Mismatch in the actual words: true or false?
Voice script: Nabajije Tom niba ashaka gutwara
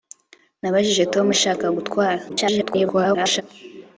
true